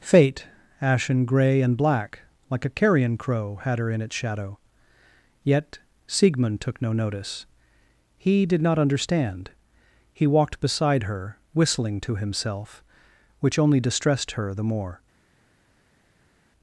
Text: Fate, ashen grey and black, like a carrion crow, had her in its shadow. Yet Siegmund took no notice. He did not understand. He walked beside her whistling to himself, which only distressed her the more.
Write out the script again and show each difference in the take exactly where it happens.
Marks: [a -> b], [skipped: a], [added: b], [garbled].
Fate, ashen grey and black, like a carrion crow, had her in its shadow. Yet Siegmund took no notice. He did not understand. He walked beside her whistling to himself, which only distressed her the more.